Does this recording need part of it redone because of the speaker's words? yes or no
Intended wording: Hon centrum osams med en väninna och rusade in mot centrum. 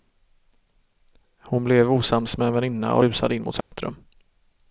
yes